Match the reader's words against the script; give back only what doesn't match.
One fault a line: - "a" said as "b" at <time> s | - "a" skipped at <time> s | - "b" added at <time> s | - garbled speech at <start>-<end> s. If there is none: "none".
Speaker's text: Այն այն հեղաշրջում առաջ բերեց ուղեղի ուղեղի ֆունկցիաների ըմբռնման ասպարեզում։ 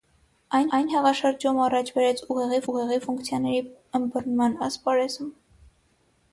none